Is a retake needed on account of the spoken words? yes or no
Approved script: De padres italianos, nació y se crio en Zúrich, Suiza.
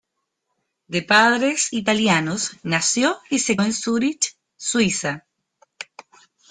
yes